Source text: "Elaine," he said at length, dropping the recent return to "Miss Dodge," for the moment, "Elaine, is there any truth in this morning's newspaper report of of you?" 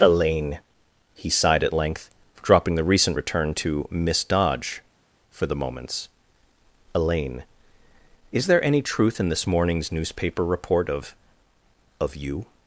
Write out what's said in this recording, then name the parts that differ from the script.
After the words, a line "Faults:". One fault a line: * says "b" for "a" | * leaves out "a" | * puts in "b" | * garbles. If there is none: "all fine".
"Elaine," he sighed at length, dropping the recent return to "Miss Dodge," for the moments, "Elaine, is there any truth in this morning's newspaper report of of you?"
Faults:
* says "sighed" for "said"
* says "moments" for "moment"